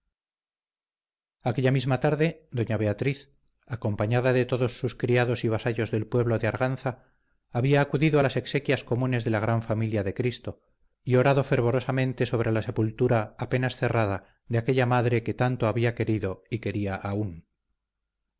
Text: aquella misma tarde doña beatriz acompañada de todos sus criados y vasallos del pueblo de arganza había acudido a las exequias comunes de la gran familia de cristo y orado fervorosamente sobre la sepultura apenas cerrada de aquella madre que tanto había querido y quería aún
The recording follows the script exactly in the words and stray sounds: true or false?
true